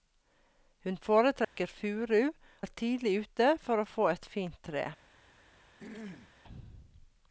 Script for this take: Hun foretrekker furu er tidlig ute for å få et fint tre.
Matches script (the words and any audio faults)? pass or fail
fail